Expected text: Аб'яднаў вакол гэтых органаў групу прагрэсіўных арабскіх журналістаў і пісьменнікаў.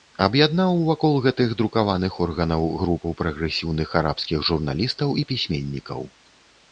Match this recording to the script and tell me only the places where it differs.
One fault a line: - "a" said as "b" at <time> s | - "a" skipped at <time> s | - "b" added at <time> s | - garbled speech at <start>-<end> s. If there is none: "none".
- "друкаваных" added at 1.6 s